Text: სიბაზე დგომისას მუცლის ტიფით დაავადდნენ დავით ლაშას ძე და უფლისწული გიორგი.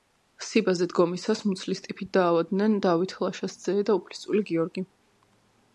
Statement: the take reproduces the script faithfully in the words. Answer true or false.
true